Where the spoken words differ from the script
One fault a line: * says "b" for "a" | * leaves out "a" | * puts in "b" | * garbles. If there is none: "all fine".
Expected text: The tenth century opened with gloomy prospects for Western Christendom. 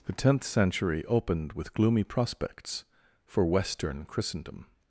all fine